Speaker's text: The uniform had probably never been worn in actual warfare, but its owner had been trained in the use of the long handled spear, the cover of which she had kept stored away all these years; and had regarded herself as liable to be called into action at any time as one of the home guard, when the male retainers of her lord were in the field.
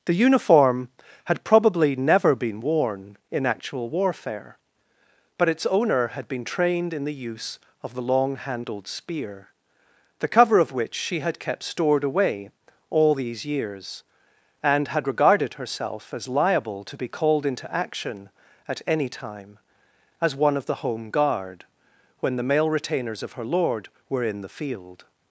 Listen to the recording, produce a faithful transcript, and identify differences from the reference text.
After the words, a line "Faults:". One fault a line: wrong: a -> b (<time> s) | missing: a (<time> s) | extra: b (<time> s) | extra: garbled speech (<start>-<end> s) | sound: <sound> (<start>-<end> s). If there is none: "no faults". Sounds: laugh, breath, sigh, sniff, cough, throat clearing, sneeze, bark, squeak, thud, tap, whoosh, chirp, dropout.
The uniform had probably never been worn in actual warfare, but its owner had been trained in the use of the long handled spear, the cover of which she had kept stored away all these years; and had regarded herself as liable to be called into action at any time as one of the home guard, when the male retainers of her lord were in the field.
Faults:
no faults